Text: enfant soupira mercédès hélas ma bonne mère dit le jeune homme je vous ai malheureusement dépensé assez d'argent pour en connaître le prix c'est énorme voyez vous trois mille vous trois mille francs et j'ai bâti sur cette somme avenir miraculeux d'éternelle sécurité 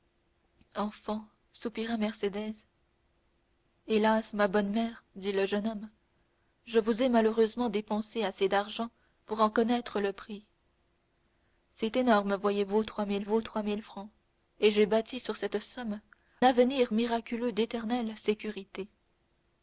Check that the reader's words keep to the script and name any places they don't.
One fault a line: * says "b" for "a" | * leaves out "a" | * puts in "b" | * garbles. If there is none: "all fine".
all fine